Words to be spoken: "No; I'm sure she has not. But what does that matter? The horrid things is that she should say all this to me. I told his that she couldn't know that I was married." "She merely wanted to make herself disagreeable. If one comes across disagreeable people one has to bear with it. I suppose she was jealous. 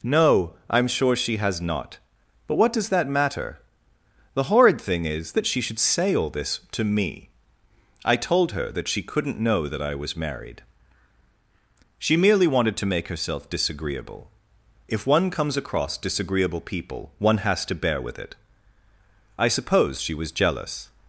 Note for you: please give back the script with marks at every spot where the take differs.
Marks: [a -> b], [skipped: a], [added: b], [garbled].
"No; I'm sure she has not. But what does that matter? The horrid [things -> thing] is that she should say all this to me. I told [his -> her] that she couldn't know that I was married." "She merely wanted to make herself disagreeable. If one comes across disagreeable people one has to bear with it. I suppose she was jealous.